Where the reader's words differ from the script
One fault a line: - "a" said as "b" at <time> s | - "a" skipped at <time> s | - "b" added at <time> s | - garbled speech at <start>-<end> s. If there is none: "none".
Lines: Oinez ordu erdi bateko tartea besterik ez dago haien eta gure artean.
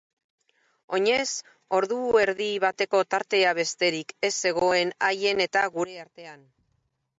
- "dago" said as "zegoen" at 4.5 s